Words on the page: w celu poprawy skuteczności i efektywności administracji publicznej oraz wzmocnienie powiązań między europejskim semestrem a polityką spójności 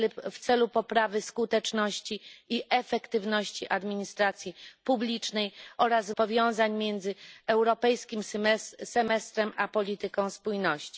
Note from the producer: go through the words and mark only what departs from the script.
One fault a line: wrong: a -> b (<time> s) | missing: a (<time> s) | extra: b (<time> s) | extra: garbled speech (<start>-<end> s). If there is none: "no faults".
missing: wzmocnienie (6.1 s)